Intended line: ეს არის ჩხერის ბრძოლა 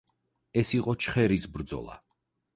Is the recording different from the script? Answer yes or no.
yes